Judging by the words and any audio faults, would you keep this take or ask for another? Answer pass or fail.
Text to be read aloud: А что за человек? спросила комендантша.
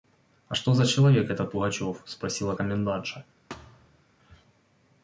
fail